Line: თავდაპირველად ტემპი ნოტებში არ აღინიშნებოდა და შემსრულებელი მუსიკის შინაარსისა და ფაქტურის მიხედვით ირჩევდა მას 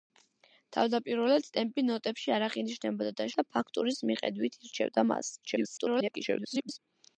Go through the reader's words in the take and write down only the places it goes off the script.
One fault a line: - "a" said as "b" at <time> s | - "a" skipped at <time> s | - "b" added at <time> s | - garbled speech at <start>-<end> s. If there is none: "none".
- "შემსრულებელი მუსიკის შინაარსისა" skipped at 3.3 s
- garbled speech at 5.4-6.8 s